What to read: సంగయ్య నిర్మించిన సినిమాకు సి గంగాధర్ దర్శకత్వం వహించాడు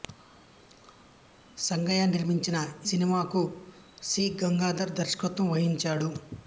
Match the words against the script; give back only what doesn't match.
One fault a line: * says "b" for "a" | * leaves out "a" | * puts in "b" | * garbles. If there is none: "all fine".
all fine